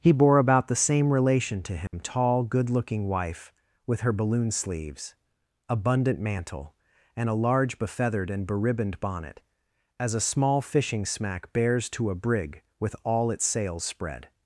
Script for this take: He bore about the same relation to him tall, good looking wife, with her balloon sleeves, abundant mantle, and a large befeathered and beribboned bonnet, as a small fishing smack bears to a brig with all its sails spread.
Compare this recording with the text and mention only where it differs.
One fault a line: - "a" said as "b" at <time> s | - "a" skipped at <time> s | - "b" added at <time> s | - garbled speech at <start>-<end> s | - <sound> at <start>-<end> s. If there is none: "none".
- dropout at 1.9-1.9 s